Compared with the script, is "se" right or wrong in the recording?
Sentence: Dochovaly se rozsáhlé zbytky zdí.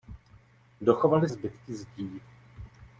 wrong